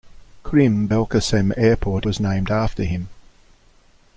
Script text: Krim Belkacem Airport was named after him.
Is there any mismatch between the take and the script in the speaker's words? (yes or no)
no